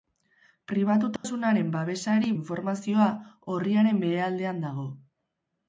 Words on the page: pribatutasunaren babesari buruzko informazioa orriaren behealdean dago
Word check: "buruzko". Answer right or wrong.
wrong